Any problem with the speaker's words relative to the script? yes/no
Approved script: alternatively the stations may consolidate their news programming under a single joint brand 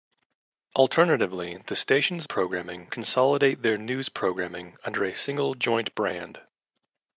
yes